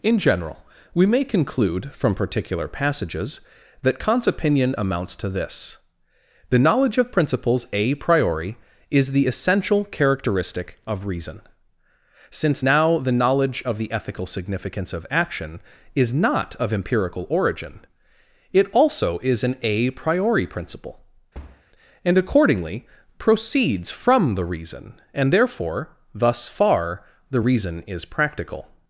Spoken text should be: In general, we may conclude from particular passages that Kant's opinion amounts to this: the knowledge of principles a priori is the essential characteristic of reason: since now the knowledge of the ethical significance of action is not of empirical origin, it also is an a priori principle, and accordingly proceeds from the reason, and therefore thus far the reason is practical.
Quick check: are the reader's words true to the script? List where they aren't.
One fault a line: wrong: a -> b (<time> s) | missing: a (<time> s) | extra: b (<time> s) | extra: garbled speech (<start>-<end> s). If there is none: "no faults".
no faults